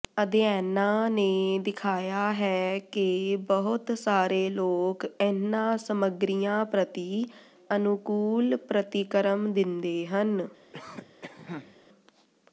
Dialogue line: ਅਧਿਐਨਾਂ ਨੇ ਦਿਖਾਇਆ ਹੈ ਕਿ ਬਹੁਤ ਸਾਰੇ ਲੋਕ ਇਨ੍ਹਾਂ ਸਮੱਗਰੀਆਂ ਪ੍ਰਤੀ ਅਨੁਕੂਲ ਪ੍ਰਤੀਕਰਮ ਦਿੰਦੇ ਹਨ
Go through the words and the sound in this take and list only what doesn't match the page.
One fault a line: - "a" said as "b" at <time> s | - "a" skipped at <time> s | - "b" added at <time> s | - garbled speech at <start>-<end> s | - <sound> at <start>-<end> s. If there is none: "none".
- cough at 10.7-11.8 s